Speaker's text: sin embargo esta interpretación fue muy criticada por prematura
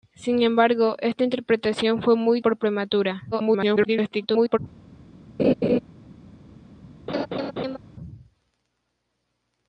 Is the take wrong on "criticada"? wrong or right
wrong